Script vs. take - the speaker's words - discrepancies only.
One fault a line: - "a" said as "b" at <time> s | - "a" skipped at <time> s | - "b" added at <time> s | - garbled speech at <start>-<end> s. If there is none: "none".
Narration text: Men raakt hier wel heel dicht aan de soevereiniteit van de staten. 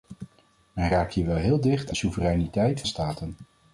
- "aan" skipped at 1.9 s
- "van" skipped at 2.8 s